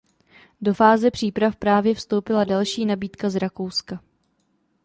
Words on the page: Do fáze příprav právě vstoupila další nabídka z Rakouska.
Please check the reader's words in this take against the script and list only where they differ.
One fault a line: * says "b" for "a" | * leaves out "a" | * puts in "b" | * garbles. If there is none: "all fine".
all fine